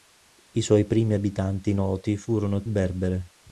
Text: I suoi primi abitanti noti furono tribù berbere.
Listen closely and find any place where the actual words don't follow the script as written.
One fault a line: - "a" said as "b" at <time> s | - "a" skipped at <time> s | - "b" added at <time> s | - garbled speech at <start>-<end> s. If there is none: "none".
- "tribù" skipped at 2.6 s